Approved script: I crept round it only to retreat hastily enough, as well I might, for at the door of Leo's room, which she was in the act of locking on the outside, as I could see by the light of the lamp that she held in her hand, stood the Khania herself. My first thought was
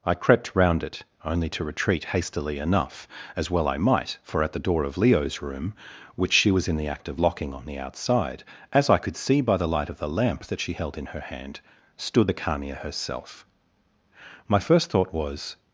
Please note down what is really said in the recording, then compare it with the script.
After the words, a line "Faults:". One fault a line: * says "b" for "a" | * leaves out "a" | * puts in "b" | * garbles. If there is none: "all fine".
I crept round it only to retreat hastily enough, as well I might, for at the door of Leo's room, which she was in the act of locking on the outside, as I could see by the light of the lamp that she held in her hand, stood the Khania herself. My first thought was
Faults:
all fine